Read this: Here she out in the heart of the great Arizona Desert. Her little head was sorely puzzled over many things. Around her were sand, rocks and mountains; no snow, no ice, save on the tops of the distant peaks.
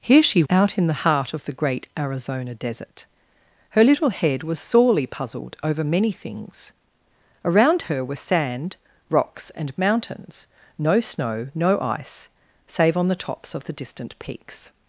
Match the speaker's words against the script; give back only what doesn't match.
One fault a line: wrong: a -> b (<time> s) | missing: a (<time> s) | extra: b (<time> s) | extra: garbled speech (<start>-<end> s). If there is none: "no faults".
no faults